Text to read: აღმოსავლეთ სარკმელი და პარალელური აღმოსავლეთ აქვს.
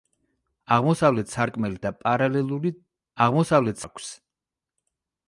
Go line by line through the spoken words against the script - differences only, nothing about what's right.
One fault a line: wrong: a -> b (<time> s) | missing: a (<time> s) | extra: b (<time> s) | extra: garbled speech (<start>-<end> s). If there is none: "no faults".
no faults